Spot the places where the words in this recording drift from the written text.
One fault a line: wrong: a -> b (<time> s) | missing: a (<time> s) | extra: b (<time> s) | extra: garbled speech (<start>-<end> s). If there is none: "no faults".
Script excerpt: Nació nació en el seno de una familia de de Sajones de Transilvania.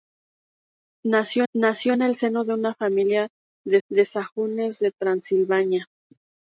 no faults